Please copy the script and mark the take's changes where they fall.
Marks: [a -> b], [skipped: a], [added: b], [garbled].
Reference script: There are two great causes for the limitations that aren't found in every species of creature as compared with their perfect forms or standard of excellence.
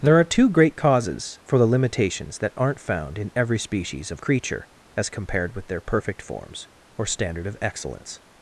There are two great causes for the limitations that aren't found in every species of creature as compared with their perfect forms or standard of excellence.